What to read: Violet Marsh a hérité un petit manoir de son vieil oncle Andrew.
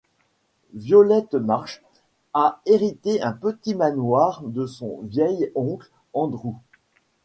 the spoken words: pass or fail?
pass